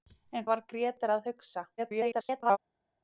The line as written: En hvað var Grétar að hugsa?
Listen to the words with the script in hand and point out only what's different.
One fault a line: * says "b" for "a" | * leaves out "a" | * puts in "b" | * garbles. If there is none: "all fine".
* leaves out "hvað"
* garbles